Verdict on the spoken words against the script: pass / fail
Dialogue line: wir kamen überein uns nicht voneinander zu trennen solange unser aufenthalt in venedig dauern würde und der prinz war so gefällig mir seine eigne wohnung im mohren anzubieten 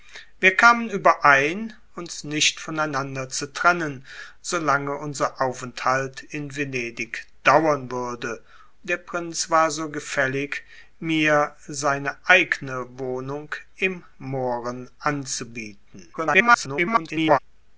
fail